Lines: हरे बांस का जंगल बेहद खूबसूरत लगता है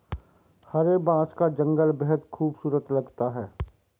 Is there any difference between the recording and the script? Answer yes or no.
no